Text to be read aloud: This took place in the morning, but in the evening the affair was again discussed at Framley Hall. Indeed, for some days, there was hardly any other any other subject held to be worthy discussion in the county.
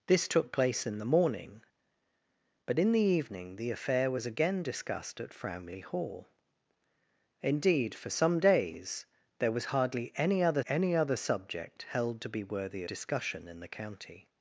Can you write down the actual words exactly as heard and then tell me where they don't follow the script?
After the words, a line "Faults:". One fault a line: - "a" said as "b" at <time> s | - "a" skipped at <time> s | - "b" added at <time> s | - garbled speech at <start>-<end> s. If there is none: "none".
This took place in the morning, but in the evening the affair was again discussed at Framley Hall. Indeed, for some days, there was hardly any other any other subject held to be worthy discussion in the county.
Faults:
none